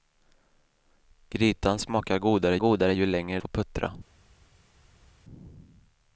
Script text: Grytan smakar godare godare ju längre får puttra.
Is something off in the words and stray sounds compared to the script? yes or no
no